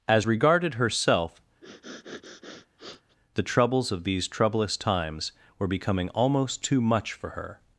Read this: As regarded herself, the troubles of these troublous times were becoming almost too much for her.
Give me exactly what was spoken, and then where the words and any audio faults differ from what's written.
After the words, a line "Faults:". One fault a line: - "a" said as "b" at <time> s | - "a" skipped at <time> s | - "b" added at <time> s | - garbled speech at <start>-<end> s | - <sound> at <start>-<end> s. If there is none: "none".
As regarded herself, the troubles of these troublous times were becoming almost too much for her.
Faults:
- sniff at 1.6-3.2 s